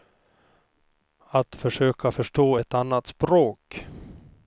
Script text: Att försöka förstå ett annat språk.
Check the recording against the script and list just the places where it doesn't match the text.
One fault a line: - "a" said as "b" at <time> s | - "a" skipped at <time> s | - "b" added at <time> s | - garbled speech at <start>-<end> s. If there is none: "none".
none